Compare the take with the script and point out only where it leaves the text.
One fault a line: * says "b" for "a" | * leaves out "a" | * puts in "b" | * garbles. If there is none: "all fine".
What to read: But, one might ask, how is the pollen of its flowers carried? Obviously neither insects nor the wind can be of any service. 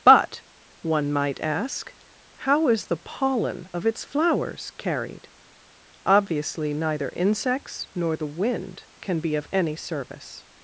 all fine